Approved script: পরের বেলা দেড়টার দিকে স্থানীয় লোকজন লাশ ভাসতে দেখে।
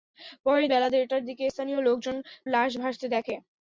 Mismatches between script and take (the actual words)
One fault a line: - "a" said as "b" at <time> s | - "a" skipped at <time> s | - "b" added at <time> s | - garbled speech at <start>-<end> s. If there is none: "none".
none